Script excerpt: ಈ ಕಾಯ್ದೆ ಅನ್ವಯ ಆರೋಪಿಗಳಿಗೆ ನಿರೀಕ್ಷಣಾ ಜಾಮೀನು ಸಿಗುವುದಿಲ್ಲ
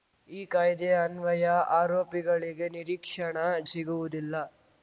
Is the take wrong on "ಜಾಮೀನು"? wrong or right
wrong